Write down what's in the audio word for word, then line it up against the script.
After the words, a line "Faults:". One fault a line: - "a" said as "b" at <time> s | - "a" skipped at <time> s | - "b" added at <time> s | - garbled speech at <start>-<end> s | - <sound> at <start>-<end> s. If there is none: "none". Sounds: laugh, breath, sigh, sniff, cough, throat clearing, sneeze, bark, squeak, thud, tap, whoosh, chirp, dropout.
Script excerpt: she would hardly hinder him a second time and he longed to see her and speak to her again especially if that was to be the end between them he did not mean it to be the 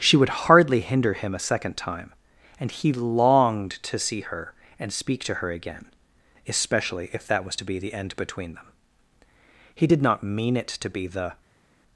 she would hardly hinder him a second time and he longed to see her and speak to her again especially if that was to be the end between them he did not mean it to be the
Faults:
none